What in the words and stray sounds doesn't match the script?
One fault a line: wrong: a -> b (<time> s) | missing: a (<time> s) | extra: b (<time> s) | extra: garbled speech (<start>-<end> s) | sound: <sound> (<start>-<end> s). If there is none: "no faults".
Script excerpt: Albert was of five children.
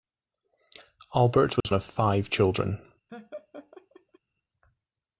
sound: dropout (1.6-1.6 s)
sound: laugh (3.1-4.2 s)